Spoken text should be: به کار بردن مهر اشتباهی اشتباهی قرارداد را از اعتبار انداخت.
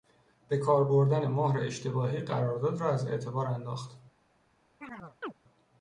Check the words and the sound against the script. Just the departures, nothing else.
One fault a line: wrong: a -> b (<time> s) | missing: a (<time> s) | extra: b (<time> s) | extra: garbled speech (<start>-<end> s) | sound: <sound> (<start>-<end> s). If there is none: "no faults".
missing: اشتباهی (2.2 s)
sound: chirp (4.8-5.3 s)